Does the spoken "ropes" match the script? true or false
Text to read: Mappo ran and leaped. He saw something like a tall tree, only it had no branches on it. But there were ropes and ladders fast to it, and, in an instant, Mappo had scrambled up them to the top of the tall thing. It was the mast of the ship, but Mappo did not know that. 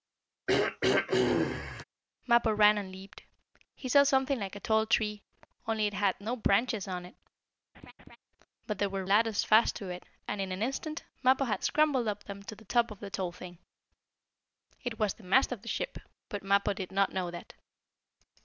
false